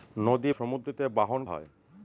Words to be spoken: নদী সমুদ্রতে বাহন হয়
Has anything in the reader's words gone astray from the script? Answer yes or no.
no